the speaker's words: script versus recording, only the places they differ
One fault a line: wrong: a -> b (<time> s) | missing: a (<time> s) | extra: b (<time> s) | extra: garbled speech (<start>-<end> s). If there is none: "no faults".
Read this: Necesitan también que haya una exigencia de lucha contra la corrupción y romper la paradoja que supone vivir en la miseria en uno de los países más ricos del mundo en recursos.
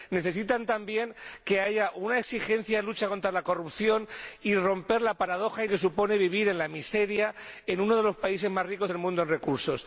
no faults